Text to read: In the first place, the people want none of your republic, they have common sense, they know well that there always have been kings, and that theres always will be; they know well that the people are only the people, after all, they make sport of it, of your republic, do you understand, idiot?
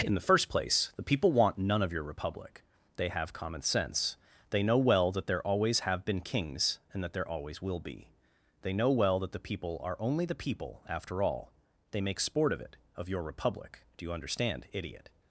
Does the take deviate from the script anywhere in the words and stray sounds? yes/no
yes